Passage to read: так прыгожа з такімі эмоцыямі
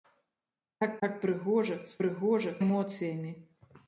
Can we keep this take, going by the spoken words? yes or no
no